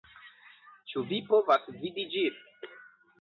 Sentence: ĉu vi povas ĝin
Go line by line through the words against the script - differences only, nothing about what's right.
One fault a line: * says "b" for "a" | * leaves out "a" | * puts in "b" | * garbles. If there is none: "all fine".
* puts in "vidi"